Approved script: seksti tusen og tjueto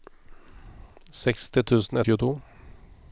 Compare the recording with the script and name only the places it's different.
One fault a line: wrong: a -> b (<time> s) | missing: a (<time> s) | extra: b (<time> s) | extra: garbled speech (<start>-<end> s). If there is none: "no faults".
no faults